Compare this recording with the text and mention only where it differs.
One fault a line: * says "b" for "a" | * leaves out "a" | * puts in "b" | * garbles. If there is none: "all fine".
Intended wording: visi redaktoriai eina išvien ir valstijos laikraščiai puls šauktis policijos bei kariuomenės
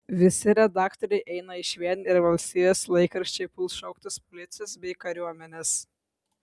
all fine